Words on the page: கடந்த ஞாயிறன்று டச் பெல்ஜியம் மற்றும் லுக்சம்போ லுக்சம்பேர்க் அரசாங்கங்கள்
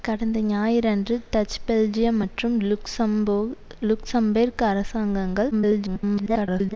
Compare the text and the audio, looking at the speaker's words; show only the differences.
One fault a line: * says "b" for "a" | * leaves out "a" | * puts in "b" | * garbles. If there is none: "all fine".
* garbles